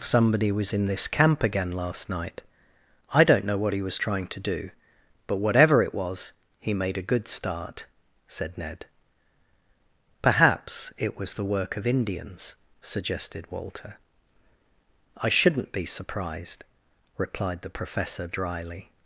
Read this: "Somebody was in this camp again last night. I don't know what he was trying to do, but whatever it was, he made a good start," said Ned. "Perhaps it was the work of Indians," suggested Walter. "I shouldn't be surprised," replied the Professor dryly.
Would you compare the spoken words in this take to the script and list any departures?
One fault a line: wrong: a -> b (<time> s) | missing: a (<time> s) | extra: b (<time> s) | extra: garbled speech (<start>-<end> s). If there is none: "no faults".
no faults